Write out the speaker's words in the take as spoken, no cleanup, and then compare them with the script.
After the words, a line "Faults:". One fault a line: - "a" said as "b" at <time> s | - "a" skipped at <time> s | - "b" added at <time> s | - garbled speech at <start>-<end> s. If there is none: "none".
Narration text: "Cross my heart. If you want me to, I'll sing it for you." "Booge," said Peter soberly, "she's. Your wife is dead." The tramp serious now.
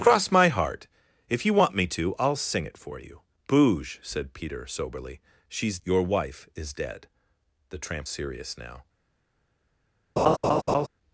"Cross my heart. If you want me to, I'll sing it for you." "Booge," said Peter soberly, "she's. Your wife is dead." The tramp serious now.
Faults:
none